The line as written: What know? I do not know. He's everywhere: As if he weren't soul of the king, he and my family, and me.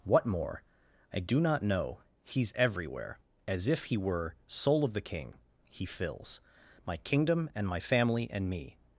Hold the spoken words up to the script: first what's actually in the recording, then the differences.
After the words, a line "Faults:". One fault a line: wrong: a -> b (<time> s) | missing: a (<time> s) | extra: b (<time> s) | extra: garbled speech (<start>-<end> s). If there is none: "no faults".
What more? I do not know. He's everywhere: As if he were soul of the king, he fills My kingdom, and my family, and me.
Faults:
wrong: know -> more (0.2 s)
wrong: weren't -> were (4.0 s)
extra: fills My kingdom (5.9 s)